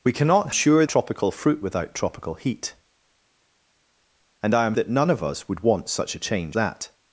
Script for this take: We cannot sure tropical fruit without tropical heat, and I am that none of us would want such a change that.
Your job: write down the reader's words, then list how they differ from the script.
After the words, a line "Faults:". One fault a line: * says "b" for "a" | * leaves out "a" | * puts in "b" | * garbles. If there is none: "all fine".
We cannot sure tropical fruit without tropical heat, and I am that none of us would want such a change that.
Faults:
all fine